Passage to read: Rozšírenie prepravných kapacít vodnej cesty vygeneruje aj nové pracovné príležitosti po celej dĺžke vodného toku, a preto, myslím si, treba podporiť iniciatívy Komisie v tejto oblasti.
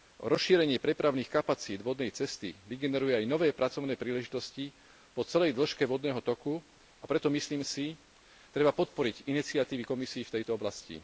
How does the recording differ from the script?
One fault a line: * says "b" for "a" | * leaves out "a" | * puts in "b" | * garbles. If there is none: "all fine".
all fine